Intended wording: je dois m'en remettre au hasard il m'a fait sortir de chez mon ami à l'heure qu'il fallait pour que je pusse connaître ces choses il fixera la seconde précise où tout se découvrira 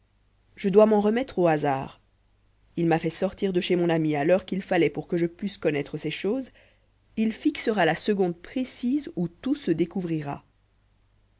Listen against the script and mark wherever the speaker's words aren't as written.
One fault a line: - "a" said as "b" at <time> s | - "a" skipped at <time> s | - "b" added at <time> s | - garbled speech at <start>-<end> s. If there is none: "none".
none